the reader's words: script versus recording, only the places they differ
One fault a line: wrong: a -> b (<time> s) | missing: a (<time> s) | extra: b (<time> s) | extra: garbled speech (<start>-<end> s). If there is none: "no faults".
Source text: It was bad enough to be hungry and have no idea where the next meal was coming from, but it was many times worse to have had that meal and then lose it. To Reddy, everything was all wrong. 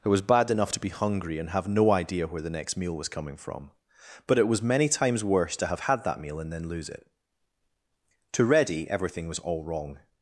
no faults